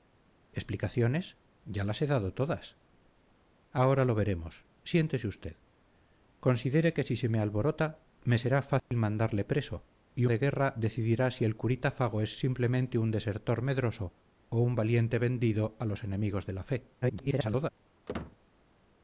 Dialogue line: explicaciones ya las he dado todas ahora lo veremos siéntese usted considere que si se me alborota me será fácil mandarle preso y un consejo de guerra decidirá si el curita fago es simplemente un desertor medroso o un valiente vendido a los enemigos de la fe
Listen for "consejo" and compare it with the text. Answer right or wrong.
wrong